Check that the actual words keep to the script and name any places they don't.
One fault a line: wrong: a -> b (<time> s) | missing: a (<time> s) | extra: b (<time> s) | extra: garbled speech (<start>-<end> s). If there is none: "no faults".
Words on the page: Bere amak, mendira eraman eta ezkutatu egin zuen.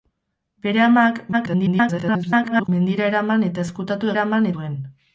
extra: garbled speech (1.3-2.7 s)
wrong: egin -> eraman (4.2 s)